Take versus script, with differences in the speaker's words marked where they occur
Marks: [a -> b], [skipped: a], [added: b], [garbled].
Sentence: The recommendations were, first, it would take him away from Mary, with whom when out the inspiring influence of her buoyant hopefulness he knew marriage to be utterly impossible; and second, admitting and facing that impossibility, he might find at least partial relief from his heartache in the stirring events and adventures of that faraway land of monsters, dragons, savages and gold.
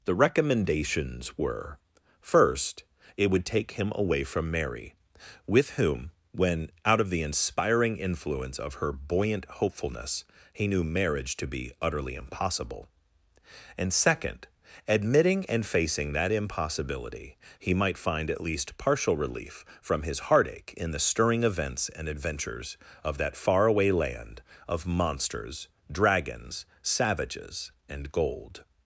The recommendations were, first, it would take him away from Mary, with whom when out [added: of] the inspiring influence of her buoyant hopefulness he knew marriage to be utterly impossible; and second, admitting and facing that impossibility, he might find at least partial relief from his heartache in the stirring events and adventures of that faraway land of monsters, dragons, savages and gold.